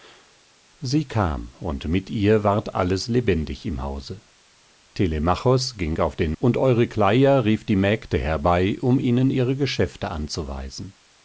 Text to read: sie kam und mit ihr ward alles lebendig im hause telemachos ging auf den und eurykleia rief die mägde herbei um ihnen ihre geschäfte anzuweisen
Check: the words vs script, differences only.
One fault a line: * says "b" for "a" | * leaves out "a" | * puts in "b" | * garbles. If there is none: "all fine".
all fine